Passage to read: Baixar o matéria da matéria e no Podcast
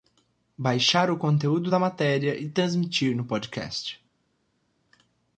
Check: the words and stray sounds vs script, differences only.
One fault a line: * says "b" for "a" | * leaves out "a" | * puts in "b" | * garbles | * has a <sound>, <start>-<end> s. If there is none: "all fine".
* says "conteúdo" for "matéria"
* puts in "transmitir"